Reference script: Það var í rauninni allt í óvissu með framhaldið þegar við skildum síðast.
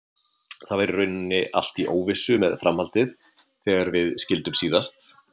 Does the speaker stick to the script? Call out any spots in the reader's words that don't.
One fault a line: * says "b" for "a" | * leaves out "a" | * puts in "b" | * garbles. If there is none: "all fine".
all fine